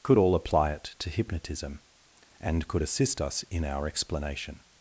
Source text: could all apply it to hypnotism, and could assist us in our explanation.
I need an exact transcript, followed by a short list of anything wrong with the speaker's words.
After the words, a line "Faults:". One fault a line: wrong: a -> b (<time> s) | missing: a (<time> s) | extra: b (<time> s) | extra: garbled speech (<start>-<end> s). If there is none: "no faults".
could all apply it to hypnotism, and could assist us in our explanation.
Faults:
no faults